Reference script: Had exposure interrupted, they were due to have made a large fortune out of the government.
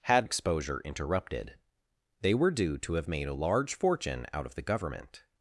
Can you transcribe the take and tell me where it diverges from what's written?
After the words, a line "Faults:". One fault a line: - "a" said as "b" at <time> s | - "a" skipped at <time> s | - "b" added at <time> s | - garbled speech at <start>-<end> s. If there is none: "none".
Had exposure interrupted, they were due to have made a large fortune out of the government.
Faults:
none